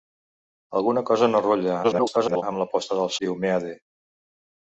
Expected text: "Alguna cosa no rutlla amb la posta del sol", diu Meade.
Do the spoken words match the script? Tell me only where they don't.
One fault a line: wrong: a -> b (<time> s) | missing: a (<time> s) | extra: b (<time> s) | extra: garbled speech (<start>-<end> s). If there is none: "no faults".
extra: garbled speech (1.8-2.4 s)
missing: sol (3.1 s)